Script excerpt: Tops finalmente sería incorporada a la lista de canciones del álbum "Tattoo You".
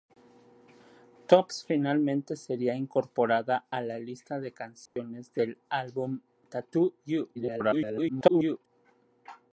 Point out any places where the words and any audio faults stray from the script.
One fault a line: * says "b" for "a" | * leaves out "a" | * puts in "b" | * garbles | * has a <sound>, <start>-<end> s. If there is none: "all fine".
* has a dropout, 4.9-5.0 s
* garbles